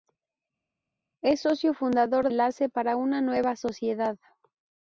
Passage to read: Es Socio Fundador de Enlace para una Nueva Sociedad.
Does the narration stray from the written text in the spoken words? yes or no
yes